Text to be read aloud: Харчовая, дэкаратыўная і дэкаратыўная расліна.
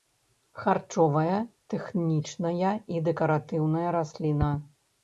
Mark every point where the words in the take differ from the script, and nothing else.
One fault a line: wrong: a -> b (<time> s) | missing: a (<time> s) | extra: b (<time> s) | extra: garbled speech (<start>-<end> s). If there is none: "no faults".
wrong: дэкаратыўная -> тэхнічная (1.8 s)